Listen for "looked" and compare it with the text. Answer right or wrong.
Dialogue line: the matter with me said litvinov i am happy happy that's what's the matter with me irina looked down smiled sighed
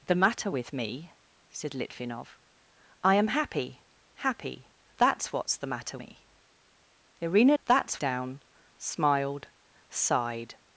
wrong